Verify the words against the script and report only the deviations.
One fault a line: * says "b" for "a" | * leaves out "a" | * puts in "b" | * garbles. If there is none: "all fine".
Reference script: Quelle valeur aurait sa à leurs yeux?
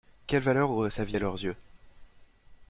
* puts in "vie"